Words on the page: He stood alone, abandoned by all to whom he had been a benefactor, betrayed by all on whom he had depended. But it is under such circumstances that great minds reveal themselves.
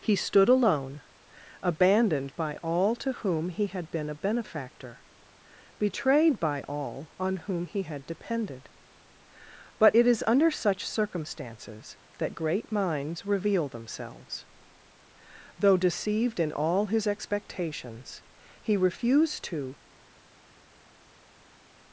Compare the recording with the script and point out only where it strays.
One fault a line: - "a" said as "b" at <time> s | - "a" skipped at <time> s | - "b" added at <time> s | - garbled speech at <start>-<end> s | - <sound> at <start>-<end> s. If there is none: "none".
- "Though deceived in all his expectations he refused to" added at 15.6 s